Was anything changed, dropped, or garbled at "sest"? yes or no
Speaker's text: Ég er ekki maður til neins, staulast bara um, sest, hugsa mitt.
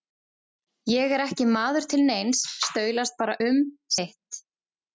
yes